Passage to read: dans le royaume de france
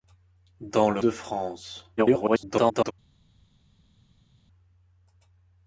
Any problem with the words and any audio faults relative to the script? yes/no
yes